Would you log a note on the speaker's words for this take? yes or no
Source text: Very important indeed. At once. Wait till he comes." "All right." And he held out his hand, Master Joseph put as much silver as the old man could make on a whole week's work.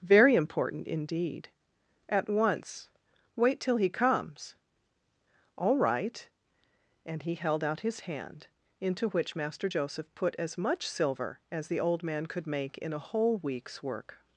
yes